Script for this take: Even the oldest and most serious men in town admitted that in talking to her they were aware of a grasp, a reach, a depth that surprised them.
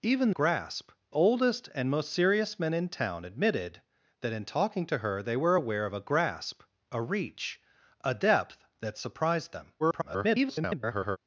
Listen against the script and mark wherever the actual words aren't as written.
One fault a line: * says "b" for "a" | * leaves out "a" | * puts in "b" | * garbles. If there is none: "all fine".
* says "grasp" for "the"
* garbles